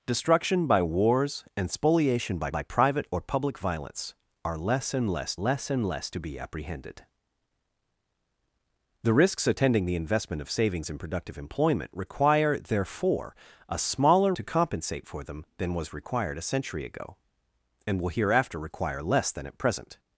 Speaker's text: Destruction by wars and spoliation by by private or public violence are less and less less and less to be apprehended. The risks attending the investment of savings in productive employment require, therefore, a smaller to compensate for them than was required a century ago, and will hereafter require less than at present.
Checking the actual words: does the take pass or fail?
pass